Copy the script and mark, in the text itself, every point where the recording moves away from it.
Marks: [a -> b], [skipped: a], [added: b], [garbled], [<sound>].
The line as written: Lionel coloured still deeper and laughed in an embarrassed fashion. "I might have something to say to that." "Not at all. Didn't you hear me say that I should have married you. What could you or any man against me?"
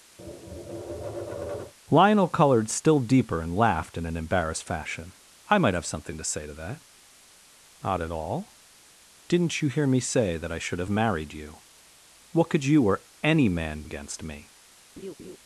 [tap] Lionel coloured still deeper and laughed in an embarrassed fashion. "I might have something to say to that." "Not at all. Didn't you hear me say that I should have married you. What could you or any man against me?" [laugh]